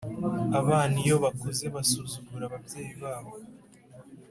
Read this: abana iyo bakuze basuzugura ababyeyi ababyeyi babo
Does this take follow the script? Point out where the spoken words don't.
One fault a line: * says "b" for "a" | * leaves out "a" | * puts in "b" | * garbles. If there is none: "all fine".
* leaves out "ababyeyi"